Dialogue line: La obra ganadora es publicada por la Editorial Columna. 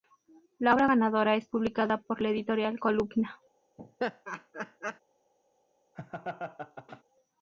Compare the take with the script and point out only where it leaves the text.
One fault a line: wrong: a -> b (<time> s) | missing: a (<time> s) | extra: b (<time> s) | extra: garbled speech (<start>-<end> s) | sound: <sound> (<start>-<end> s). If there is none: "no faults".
sound: laugh (3.8-5.0 s)
sound: laugh (5.9-7.0 s)